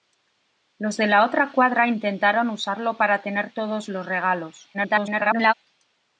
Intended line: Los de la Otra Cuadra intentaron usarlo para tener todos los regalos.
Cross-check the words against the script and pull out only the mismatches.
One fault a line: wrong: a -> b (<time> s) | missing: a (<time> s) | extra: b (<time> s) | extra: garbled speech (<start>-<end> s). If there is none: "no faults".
extra: garbled speech (4.7-5.5 s)